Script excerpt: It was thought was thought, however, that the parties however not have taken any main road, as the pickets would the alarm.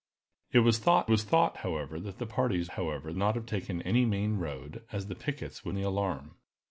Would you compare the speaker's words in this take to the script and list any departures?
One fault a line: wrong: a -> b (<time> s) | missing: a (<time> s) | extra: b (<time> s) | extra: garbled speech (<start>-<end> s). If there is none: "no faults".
no faults